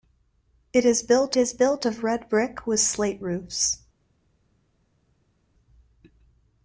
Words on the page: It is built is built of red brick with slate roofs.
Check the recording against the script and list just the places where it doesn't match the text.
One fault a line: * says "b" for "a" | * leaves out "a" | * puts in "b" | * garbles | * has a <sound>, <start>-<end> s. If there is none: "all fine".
all fine